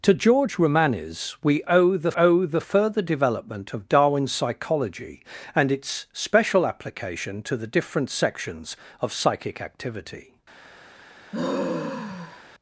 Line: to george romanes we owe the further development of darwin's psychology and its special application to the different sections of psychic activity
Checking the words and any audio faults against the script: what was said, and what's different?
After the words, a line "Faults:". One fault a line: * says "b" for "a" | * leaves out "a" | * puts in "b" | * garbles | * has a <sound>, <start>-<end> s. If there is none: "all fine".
to george romanes we owe the owe the further development of darwin's psychology and its special application to the different sections of psychic activity
Faults:
* puts in "owe the"
* has a sigh, 11.3-12.4 s